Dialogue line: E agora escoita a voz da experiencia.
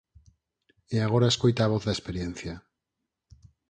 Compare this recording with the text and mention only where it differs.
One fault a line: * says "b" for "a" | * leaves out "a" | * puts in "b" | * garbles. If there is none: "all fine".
all fine